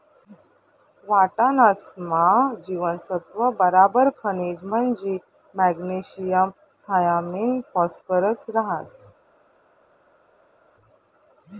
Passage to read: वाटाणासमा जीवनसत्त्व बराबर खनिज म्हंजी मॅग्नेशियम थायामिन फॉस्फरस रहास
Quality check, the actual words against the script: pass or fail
pass